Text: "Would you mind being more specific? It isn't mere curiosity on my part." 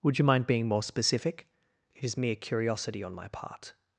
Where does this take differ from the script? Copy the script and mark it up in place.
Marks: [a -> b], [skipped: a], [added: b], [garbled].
"Would you mind being more specific? It [isn't -> is] mere curiosity on my part."